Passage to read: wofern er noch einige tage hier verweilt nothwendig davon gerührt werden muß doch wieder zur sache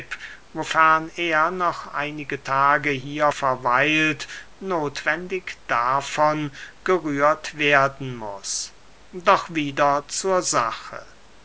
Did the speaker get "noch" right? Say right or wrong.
right